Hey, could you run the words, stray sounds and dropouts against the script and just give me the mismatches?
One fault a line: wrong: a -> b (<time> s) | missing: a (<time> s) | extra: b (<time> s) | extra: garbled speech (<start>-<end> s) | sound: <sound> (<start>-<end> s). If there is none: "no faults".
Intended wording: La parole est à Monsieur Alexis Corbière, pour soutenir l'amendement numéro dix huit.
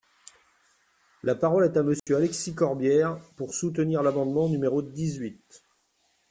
sound: dropout (2.0-2.1 s)